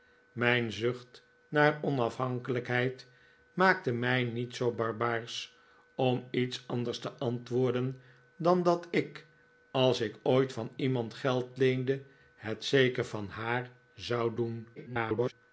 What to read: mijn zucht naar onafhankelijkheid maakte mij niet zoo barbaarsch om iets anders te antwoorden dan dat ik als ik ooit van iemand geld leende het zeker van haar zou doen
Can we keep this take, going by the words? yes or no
no